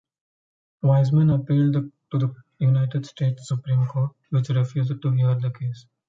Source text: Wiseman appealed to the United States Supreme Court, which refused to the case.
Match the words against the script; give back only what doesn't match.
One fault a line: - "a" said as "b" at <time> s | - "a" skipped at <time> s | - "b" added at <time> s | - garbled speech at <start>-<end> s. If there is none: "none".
- "hear" added at 5.1 s